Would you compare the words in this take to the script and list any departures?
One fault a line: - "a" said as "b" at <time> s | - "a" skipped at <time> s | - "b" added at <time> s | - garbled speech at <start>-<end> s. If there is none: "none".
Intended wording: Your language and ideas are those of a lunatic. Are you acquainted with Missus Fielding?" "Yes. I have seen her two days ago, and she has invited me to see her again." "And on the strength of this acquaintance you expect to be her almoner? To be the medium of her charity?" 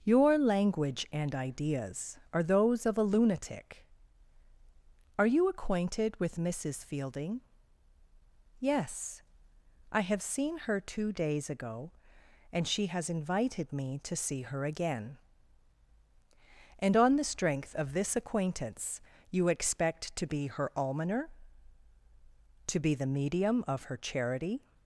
none